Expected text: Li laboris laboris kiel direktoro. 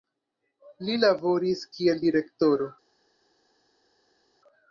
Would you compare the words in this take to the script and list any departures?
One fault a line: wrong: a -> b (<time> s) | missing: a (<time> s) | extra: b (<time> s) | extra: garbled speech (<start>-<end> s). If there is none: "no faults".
missing: laboris (1.6 s)